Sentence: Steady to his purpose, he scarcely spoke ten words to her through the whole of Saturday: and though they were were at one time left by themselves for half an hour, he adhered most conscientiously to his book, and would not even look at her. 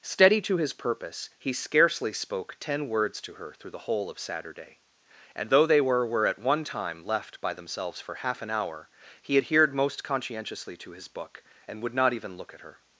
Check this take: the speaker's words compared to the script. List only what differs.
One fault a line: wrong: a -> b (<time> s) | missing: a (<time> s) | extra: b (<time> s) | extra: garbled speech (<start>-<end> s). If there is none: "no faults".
no faults